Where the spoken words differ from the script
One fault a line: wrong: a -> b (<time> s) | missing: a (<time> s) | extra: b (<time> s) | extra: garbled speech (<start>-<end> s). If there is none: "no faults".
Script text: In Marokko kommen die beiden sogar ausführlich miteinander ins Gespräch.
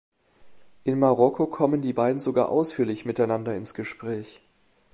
no faults